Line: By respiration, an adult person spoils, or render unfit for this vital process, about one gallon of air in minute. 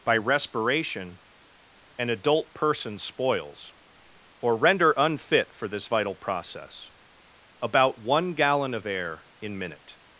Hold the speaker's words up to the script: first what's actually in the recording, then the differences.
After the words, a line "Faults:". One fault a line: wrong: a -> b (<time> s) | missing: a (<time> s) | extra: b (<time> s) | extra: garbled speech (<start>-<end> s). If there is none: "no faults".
By respiration, an adult person spoils, or render unfit for this vital process, about one gallon of air in minute.
Faults:
no faults